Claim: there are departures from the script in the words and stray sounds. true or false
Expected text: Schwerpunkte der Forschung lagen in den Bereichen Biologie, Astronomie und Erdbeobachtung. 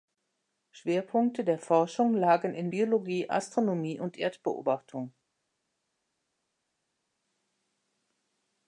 true